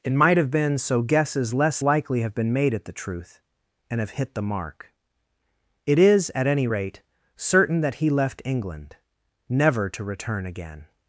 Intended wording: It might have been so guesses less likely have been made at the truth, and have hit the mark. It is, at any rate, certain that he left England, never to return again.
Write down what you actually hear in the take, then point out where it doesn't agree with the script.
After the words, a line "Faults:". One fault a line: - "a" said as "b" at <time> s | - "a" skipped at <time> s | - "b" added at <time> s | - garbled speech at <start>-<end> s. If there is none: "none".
It might have been so guesses less likely have been made at the truth, and have hit the mark. It is, at any rate, certain that he left England, never to return again.
Faults:
none